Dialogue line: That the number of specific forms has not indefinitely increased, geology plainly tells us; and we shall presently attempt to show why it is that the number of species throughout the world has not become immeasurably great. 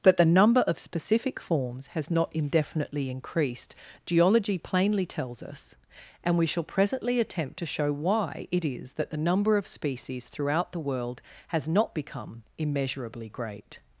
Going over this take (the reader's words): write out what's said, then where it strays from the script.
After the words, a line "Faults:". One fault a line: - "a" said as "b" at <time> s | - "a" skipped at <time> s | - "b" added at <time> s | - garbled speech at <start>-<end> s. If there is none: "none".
That the number of specific forms has not indefinitely increased, geology plainly tells us; and we shall presently attempt to show why it is that the number of species throughout the world has not become immeasurably great.
Faults:
none